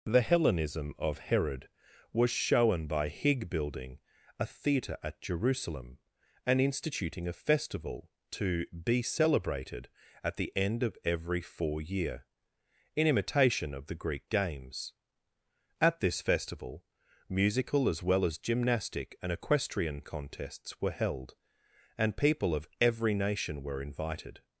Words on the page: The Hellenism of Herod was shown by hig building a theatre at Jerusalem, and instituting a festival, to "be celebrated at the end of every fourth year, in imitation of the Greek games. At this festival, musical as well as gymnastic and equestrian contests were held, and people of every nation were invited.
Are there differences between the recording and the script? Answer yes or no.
yes